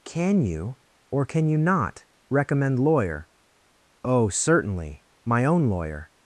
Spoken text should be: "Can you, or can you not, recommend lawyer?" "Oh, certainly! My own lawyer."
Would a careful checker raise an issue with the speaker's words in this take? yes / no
no